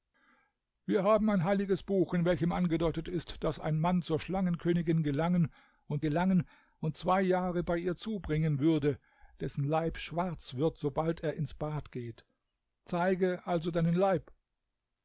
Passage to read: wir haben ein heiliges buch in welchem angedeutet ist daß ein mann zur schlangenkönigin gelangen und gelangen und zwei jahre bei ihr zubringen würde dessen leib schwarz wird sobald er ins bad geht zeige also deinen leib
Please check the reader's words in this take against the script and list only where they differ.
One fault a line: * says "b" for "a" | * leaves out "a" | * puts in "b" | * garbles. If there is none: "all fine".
all fine